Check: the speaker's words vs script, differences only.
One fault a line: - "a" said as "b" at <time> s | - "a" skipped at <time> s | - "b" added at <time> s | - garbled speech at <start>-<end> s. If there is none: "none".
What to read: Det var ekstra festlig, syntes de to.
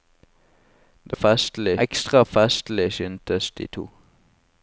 - "var" said as "festlig" at 1.1 s